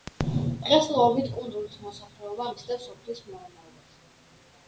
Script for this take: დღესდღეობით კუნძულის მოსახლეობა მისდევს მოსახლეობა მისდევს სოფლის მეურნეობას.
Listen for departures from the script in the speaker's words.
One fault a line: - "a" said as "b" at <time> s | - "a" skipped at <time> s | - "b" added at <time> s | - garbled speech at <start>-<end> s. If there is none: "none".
- "მოსახლეობა მისდევს" skipped at 2.9 s